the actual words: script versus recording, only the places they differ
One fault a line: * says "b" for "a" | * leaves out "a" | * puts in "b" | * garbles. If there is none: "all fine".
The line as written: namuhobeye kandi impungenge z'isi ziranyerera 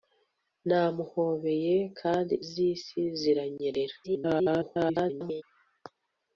* leaves out "impungenge"
* garbles